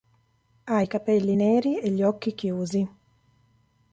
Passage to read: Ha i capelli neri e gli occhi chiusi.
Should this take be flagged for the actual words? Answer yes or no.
no